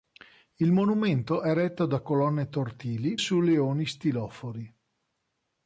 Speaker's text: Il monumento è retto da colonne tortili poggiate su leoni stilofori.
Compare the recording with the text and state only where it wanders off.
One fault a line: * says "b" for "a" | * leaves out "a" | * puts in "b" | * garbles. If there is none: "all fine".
* leaves out "poggiate"